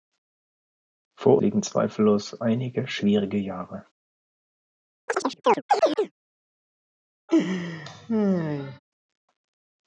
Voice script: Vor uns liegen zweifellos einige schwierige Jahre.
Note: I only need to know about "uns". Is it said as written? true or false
false